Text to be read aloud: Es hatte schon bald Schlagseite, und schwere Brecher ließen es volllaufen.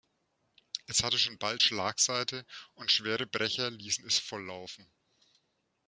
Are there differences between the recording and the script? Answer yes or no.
no